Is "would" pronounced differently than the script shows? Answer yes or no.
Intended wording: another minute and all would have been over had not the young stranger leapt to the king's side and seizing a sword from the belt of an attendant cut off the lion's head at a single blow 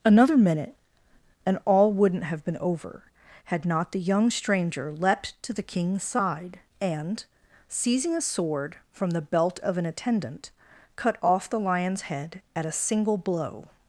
yes